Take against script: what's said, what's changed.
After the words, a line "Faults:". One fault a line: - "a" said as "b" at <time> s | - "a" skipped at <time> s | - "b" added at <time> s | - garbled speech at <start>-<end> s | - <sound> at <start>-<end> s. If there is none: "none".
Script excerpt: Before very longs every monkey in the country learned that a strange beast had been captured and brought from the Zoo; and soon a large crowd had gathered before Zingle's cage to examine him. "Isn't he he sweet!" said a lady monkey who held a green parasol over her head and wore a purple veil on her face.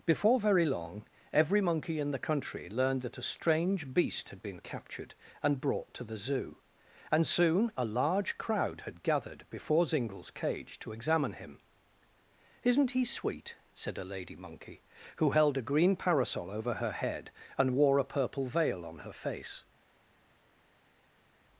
Before very long every monkey in the country learned that a strange beast had been captured and brought to the Zoo; and soon a large crowd had gathered before Zingle's cage to examine him. "Isn't he sweet!" said a lady monkey who held a green parasol over her head and wore a purple veil on her face.
Faults:
- "longs" said as "long" at 0.7 s
- "from" said as "to" at 5.9 s
- "he" skipped at 13.0 s